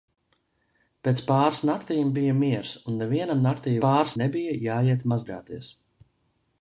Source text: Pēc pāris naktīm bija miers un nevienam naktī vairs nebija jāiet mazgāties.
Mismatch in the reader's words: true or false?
true